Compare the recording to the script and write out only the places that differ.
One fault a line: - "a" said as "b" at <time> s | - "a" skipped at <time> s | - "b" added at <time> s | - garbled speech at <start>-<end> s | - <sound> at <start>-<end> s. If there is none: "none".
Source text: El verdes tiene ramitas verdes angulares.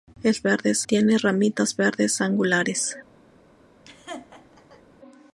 - laugh at 3.9-4.8 s